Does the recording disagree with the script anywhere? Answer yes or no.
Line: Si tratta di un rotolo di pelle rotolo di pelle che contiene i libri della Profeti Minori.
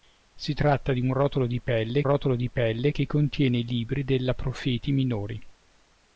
no